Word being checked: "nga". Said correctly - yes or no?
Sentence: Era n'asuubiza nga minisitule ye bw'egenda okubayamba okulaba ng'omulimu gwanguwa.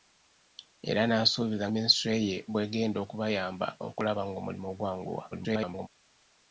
no